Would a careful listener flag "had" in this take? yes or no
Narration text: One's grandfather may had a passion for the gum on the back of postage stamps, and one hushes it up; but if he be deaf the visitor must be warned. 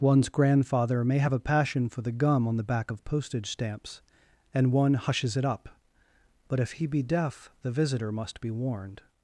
yes